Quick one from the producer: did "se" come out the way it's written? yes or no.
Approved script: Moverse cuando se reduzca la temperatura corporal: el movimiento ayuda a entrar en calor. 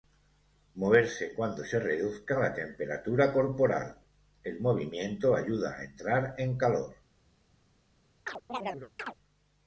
yes